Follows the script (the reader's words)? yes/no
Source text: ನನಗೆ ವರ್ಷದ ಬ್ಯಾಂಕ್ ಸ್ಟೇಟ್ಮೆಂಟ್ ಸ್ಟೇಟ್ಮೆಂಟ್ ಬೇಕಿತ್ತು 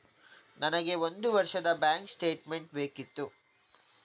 no